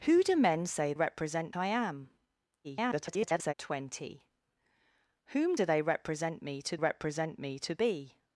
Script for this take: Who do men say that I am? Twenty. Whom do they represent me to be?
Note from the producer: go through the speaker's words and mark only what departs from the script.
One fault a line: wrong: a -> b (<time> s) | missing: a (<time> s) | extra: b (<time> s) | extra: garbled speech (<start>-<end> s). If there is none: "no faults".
wrong: that -> represent (0.9 s)
extra: garbled speech (2.6-3.5 s)
extra: represent me to (6.7 s)